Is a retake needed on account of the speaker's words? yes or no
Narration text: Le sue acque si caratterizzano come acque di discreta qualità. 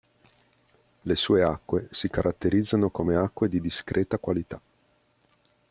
no